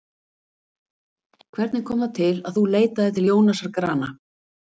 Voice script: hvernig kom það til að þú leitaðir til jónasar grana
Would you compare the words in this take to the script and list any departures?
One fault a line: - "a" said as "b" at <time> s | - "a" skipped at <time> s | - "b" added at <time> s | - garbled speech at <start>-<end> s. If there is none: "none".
none